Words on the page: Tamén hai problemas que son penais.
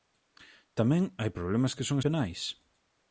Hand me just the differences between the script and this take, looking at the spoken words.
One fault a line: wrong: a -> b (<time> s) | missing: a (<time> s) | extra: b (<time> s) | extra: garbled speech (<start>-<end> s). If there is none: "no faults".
no faults